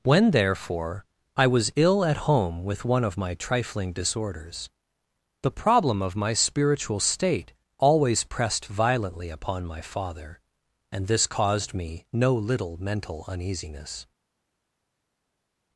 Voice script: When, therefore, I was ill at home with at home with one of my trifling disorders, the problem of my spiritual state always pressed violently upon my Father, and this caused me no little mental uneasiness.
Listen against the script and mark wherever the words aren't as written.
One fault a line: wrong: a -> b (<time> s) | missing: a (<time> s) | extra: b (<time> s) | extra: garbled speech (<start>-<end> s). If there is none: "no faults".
missing: at home with (2.9 s)